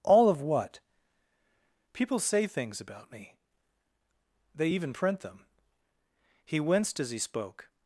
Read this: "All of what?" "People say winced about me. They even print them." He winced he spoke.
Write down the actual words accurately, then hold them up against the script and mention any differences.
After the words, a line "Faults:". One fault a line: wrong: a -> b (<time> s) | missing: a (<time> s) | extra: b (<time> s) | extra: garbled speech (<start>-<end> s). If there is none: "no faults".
"All of what?" "People say things about me. They even print them." He winced as he spoke.
Faults:
wrong: winced -> things (2.5 s)
extra: as (7.0 s)